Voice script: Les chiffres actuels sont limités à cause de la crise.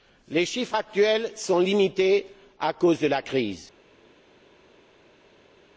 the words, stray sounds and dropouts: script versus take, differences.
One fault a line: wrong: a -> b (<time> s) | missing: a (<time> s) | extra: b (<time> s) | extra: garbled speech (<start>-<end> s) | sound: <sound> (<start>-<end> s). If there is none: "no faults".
no faults